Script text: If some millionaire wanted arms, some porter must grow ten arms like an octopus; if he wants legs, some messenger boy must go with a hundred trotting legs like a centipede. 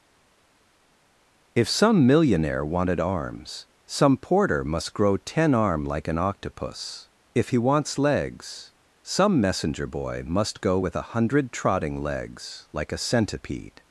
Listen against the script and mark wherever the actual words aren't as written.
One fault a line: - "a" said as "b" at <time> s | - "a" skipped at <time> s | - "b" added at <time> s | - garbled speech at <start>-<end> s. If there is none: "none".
- "arms" said as "arm" at 5.5 s